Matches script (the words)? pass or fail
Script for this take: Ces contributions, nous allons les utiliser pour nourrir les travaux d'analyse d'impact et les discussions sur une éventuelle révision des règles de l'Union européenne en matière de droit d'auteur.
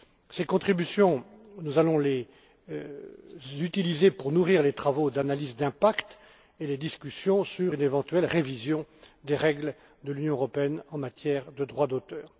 pass